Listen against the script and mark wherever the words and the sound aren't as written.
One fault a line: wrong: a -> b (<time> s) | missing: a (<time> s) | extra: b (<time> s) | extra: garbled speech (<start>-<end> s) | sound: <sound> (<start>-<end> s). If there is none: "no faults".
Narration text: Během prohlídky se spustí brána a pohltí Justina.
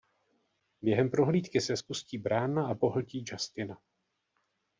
no faults